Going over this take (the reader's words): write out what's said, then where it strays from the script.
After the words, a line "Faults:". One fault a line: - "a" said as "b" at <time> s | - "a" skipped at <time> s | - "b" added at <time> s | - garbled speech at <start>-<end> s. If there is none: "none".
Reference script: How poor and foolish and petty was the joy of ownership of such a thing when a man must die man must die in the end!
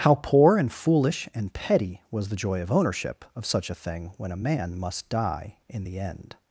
How poor and foolish and petty was the joy of ownership of such a thing when a man must die in the end!
Faults:
- "man must die" skipped at 5.6 s